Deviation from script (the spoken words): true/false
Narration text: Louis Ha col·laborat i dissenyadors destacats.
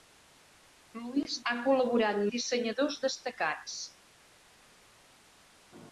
false